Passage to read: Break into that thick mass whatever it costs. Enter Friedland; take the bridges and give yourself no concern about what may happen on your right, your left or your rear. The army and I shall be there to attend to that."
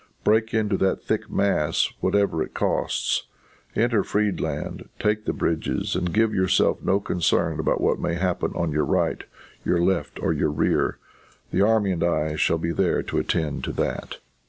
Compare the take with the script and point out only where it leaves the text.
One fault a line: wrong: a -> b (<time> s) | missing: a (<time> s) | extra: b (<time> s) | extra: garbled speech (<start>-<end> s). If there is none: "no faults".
no faults